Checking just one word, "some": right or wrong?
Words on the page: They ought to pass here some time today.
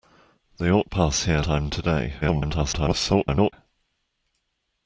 wrong